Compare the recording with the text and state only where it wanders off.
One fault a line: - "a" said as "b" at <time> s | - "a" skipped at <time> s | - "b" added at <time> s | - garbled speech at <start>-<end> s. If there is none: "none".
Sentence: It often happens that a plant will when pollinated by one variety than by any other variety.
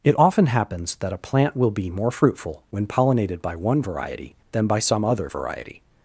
- "be more fruitful" added at 1.7 s
- "any" said as "some" at 4.8 s